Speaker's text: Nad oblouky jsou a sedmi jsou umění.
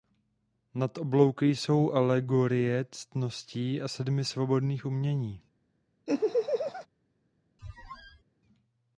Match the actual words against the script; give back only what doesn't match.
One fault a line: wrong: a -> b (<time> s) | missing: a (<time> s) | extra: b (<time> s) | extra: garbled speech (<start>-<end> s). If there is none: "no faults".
extra: alegorie ctností (1.9 s)
wrong: jsou -> svobodných (4.2 s)